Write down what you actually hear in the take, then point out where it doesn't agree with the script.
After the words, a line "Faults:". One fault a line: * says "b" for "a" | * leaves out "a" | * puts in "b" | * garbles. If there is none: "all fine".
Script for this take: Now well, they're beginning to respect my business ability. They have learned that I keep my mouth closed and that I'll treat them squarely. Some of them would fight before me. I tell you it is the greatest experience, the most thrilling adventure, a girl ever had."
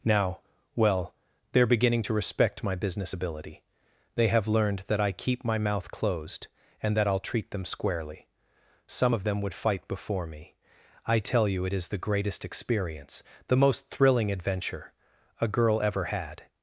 Now well, they're beginning to respect my business ability. They have learned that I keep my mouth closed and that I'll treat them squarely. Some of them would fight before me. I tell you it is the greatest experience, the most thrilling adventure, a girl ever had."
Faults:
all fine